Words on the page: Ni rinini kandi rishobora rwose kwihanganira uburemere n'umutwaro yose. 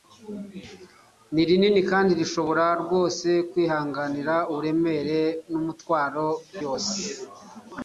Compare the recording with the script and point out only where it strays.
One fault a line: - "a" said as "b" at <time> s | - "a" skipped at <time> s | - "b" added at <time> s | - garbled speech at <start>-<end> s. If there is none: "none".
none